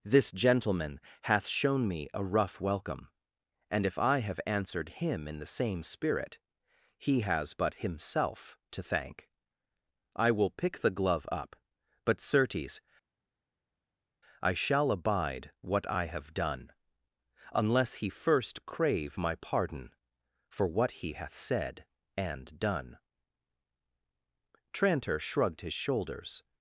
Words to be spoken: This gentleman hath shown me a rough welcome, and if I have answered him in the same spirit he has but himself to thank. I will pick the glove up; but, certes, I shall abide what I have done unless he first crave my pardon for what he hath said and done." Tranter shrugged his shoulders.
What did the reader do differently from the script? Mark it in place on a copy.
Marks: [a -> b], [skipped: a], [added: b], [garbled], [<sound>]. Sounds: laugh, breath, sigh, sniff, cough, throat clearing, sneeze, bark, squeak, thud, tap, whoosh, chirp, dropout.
This gentleman hath shown me a rough welcome, and if I have answered him in the same spirit he has but himself to thank. I will pick the glove up; but, certes, I shall abide what I have done unless he first crave my pardon for what he hath said and done." Tranter shrugged his shoulders.